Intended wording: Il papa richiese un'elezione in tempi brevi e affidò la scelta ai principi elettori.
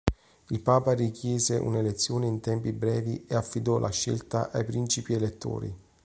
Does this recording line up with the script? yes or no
yes